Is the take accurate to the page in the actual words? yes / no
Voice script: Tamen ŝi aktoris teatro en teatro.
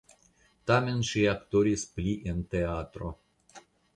no